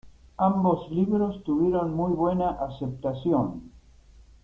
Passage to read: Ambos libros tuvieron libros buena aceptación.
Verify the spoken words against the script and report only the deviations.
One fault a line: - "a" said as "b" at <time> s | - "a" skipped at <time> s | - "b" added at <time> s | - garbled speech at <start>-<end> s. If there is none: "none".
- "libros" said as "muy" at 1.9 s